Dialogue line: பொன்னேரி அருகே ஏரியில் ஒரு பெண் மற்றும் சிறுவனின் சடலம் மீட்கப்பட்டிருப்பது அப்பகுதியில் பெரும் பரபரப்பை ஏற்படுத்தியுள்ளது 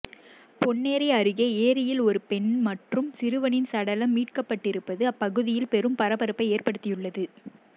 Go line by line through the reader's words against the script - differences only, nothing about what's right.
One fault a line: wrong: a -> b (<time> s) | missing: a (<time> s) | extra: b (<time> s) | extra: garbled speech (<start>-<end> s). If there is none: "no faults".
no faults